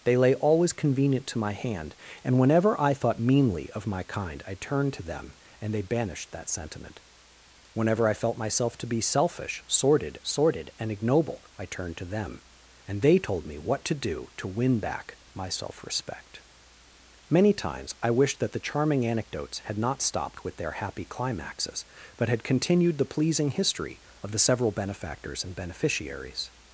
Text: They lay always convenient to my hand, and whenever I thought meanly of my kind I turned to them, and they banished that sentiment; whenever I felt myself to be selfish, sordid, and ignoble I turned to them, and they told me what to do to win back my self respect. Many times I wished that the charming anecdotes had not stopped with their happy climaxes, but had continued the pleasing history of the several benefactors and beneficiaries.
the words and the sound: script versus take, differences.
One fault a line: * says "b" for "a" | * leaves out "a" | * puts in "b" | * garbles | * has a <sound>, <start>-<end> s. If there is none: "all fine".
* puts in "sordid"